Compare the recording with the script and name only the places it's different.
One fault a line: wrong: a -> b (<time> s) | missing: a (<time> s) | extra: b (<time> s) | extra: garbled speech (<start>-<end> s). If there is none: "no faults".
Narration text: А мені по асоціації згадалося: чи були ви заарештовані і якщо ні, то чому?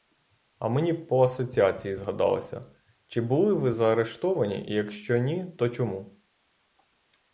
no faults